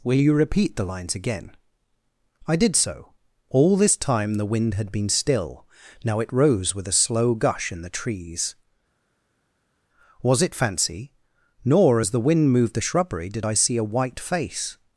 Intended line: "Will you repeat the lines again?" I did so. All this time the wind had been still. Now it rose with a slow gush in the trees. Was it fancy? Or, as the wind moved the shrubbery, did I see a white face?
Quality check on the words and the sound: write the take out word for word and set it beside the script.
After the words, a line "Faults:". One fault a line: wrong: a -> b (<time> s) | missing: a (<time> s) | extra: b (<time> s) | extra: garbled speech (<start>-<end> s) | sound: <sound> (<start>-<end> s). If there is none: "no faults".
"Will you repeat the lines again?" I did so. All this time the wind had been still. Now it rose with a slow gush in the trees. Was it fancy? Nor, as the wind moved the shrubbery, did I see a white face?
Faults:
wrong: Or -> Nor (11.6 s)